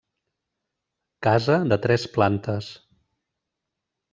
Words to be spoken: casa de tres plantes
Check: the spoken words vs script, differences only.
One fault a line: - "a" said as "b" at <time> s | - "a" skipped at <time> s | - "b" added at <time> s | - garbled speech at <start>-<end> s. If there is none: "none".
none